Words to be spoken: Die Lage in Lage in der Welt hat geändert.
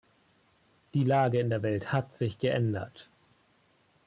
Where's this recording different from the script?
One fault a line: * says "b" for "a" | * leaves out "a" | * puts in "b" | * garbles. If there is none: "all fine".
* leaves out "Lage in"
* puts in "sich"